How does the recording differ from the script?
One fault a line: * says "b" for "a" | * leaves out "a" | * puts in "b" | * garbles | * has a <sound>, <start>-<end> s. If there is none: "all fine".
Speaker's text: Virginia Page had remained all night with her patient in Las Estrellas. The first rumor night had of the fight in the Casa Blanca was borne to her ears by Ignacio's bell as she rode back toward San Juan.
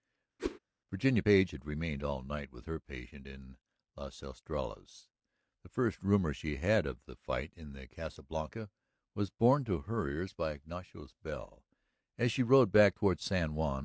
* has a whoosh, 0.4-0.6 s
* says "she" for "night"